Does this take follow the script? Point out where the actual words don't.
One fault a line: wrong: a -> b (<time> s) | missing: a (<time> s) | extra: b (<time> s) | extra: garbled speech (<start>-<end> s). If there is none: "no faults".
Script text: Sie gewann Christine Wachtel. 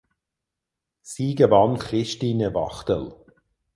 no faults